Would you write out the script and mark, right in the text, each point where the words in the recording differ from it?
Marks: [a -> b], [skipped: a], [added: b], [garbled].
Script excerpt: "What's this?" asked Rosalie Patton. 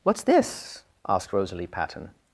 "What's this?" asked Rosalie Patton.